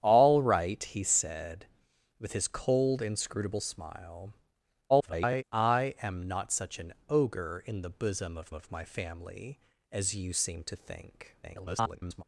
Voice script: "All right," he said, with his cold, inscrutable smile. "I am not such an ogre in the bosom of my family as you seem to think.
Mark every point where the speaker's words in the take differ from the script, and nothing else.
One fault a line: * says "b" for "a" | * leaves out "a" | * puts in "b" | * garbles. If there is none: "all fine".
* garbles
* puts in "of"
* garbles